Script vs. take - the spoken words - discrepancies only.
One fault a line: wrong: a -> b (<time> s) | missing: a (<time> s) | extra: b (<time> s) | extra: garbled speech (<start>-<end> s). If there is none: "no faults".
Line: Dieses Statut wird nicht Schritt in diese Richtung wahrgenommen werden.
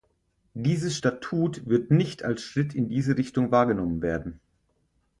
extra: als (2.2 s)